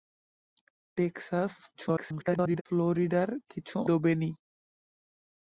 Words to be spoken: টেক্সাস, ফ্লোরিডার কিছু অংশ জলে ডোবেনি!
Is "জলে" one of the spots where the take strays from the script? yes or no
yes